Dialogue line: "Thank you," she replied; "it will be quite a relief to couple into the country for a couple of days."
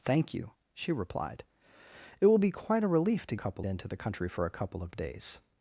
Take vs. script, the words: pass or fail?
pass